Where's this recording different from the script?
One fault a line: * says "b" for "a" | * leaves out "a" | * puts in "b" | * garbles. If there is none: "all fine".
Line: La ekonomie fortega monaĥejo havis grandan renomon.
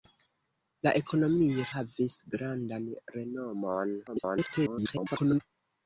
* leaves out "fortega monaĥejo"
* garbles